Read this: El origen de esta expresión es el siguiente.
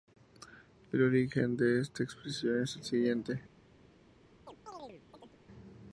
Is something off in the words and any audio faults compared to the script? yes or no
yes